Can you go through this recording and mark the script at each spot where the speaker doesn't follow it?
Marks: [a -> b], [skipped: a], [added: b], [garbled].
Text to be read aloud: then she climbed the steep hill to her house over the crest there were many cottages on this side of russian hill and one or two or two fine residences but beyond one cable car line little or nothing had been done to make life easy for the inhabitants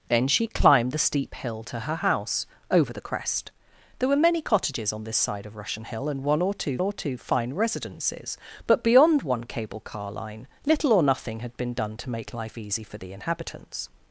then she climbed the steep hill to her house over the crest there were many cottages on this side of russian hill and one or two or two fine residences but beyond one cable car line little or nothing had been done to make life easy for the inhabitants